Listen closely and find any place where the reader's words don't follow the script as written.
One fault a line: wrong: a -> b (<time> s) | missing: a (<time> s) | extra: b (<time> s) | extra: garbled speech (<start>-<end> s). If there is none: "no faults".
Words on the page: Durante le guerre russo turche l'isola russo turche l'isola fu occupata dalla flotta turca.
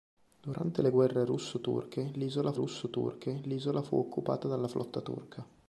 no faults